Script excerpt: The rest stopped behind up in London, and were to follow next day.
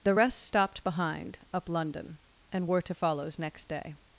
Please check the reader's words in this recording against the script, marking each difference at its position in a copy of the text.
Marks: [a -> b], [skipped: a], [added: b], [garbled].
The rest stopped behind up [skipped: in] London, and were to [follow -> follows] next day.